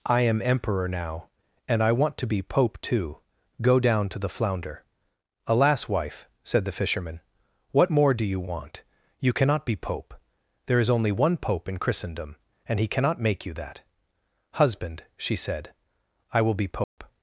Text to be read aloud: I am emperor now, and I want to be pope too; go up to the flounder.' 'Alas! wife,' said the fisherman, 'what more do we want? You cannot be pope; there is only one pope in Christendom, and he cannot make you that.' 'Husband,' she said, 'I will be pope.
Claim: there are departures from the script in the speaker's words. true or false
true